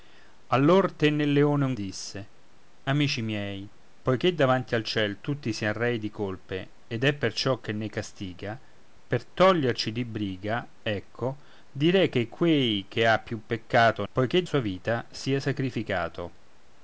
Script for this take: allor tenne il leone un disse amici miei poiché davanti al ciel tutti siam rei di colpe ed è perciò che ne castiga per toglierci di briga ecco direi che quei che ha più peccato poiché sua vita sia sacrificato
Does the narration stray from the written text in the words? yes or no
no